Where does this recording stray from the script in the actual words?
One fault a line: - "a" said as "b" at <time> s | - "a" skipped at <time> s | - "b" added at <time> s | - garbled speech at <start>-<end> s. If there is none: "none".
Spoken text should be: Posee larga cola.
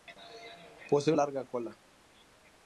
none